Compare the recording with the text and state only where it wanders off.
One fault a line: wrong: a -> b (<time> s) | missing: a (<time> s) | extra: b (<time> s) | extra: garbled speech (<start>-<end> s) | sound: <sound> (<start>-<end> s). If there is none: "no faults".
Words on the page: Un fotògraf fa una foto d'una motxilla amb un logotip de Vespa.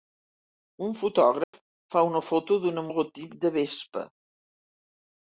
sound: dropout (1.4-1.5 s)
missing: motxilla amb un (2.9 s)